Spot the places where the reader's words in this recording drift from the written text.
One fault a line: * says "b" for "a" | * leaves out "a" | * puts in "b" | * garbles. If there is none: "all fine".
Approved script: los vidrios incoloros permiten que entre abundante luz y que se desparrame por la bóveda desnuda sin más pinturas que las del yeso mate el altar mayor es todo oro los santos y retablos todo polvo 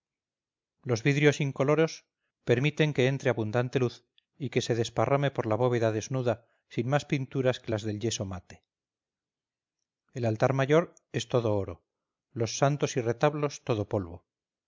all fine